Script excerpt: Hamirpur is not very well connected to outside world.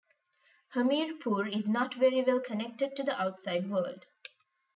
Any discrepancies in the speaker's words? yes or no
yes